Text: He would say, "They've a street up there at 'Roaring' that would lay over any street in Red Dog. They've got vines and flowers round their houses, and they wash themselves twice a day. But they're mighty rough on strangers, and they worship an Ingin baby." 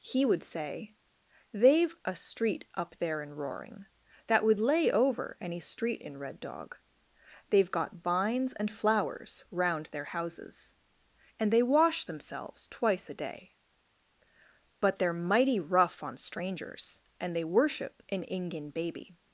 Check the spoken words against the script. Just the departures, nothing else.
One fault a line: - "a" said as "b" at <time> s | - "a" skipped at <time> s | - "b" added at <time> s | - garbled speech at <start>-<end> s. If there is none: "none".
- "at" said as "in" at 3.2 s